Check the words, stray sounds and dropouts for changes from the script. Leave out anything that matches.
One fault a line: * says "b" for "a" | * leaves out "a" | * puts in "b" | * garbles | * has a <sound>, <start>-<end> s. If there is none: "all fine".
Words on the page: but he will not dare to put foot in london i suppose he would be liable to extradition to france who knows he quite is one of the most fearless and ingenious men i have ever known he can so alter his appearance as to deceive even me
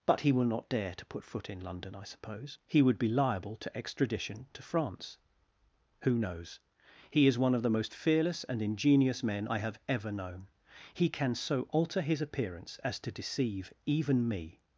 * leaves out "quite"